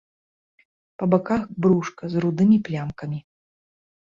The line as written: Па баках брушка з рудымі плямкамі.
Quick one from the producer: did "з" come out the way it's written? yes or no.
yes